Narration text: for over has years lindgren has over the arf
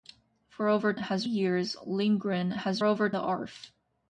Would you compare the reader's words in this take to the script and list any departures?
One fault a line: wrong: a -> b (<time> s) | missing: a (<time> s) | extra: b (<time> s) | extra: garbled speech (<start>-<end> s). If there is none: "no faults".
no faults